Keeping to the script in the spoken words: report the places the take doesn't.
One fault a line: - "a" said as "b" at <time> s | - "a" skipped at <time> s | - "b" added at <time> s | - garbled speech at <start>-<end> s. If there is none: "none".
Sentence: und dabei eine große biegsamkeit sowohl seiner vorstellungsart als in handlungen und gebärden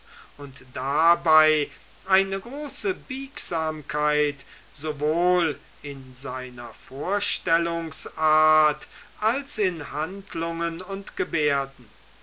- "in" added at 5.8 s